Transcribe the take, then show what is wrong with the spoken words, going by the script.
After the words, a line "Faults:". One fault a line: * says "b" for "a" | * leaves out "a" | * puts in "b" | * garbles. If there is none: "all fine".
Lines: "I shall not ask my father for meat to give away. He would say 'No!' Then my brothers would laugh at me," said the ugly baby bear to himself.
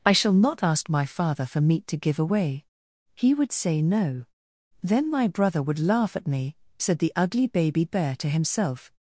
"I shall not ask my father for meat to give away. He would say 'No!' Then my brother would laugh at me," said the ugly baby bear to himself.
Faults:
* says "brother" for "brothers"